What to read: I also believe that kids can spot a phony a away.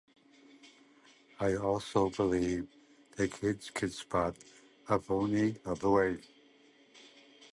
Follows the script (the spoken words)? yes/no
yes